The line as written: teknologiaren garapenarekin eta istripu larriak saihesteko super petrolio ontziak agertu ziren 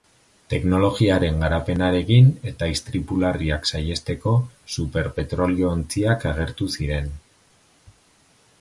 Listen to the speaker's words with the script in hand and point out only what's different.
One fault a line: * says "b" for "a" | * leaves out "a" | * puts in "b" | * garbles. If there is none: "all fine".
all fine